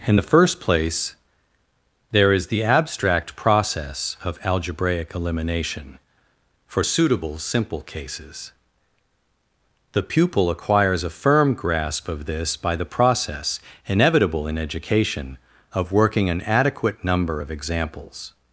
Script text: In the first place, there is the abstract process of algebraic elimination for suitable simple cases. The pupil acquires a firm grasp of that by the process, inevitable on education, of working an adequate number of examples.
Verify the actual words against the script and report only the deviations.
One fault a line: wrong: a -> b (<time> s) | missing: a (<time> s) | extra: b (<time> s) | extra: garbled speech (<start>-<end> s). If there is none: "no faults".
wrong: that -> this (12.3 s)
wrong: on -> in (14.5 s)